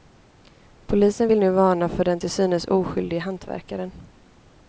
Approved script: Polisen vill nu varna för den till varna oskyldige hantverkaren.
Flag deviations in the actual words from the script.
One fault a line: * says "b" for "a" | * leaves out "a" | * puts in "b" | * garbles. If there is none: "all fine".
* says "synes" for "varna"